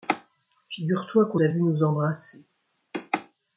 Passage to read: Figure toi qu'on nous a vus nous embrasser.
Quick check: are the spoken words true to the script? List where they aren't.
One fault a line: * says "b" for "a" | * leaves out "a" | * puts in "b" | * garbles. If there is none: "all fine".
* leaves out "nous"